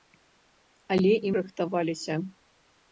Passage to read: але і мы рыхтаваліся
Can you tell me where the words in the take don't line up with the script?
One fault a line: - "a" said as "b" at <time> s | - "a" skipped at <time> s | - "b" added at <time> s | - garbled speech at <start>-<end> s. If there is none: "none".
- "мы" skipped at 1.3 s